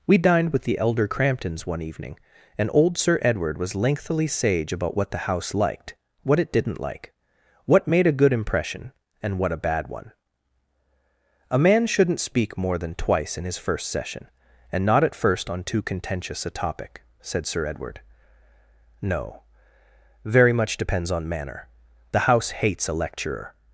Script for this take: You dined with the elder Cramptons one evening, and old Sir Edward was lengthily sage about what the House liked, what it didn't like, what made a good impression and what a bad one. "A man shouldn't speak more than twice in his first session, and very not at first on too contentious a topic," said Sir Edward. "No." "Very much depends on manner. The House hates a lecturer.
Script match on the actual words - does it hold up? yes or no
no